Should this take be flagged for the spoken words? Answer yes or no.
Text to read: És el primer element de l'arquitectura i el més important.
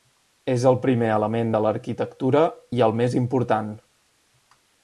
no